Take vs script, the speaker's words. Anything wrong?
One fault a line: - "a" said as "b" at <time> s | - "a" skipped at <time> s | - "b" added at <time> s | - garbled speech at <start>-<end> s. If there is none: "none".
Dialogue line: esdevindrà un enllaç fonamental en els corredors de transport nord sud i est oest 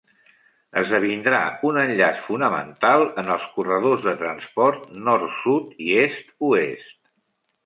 none